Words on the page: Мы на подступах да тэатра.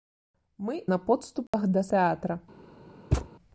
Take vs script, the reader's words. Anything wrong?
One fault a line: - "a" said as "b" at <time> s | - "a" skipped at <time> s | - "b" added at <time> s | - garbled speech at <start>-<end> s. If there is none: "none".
none